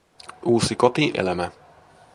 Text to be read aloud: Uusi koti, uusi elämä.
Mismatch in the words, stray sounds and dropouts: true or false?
true